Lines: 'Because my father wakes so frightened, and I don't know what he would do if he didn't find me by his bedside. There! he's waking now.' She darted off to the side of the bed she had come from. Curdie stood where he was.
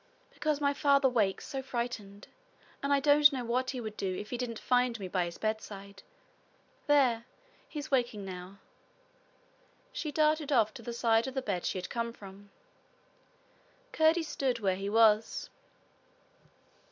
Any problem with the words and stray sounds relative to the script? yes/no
no